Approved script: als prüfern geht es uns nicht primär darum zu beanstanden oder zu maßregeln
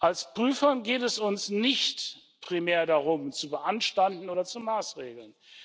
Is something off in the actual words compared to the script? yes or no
no